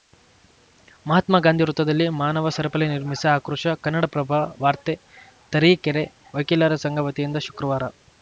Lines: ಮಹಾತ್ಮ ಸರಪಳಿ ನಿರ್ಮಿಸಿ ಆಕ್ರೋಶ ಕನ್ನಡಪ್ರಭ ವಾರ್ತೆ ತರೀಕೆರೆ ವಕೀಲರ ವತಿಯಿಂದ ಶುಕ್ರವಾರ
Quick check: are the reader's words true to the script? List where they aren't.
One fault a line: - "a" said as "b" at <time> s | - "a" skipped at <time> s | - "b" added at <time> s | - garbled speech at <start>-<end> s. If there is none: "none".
- "ಗಾಂಧಿ ವೃತ್ತದಲ್ಲಿ ಮಾನವ" added at 1.4 s
- "ಸಂಘ" added at 6.8 s